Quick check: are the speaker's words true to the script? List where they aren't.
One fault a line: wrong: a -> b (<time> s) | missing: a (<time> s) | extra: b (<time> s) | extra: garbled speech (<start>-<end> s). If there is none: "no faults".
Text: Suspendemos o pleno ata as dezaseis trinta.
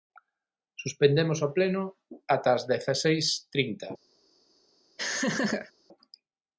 no faults